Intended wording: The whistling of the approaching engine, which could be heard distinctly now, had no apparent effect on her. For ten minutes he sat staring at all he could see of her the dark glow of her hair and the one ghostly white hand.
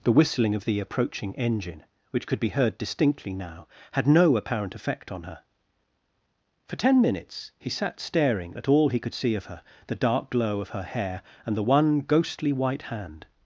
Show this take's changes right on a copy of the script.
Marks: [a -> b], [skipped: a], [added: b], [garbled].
The whistling of the approaching engine, which could be heard distinctly now, had no apparent effect on her. For ten minutes he sat staring at all he could see of her the dark glow of her hair and the one ghostly white hand.